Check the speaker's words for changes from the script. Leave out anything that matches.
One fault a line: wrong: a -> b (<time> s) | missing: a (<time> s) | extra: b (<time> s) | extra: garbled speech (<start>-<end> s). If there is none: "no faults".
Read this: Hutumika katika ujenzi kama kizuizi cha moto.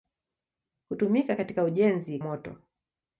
missing: kama kizuizi cha (2.2 s)